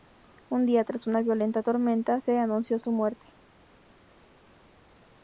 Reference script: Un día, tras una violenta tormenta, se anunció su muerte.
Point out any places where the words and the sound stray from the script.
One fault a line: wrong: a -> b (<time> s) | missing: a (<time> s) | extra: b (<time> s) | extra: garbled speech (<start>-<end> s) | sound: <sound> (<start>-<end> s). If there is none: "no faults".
no faults